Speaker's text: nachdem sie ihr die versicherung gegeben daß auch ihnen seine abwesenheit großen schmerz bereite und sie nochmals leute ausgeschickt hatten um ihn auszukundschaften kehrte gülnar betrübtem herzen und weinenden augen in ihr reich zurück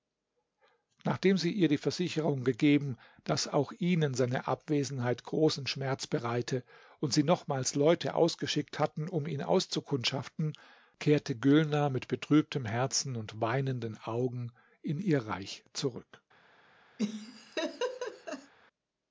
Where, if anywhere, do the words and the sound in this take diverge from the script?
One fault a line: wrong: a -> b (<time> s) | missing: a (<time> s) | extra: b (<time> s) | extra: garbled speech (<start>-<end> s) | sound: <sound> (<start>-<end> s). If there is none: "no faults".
extra: mit (11.9 s)
sound: laugh (17.0-18.5 s)